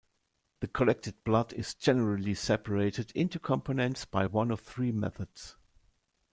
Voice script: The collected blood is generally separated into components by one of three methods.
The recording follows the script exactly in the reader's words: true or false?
true